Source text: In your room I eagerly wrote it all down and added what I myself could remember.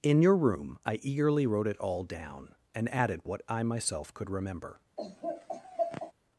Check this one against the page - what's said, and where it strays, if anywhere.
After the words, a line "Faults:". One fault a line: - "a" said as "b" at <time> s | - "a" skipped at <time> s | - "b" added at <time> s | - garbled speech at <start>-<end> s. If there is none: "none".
In your room I eagerly wrote it all down and added what I myself could remember.
Faults:
none